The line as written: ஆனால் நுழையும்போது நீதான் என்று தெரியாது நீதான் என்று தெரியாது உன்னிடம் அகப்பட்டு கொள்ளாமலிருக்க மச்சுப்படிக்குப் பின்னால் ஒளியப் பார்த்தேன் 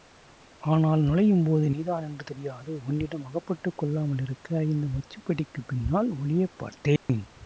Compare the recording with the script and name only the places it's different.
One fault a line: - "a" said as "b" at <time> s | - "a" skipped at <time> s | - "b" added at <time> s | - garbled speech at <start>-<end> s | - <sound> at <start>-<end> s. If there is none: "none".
- "நீதான் என்று தெரியாது" skipped at 2.8 s
- "இந்த" added at 4.7 s
- dropout at 7.0-7.1 s